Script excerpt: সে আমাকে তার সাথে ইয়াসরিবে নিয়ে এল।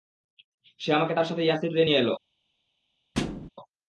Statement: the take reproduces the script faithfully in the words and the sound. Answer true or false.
false